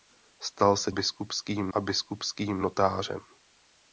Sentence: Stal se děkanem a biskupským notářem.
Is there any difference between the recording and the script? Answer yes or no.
yes